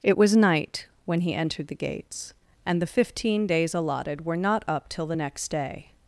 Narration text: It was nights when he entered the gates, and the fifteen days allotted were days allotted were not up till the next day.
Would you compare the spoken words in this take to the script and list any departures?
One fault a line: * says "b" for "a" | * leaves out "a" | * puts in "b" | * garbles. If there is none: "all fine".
* says "night" for "nights"
* leaves out "days allotted were"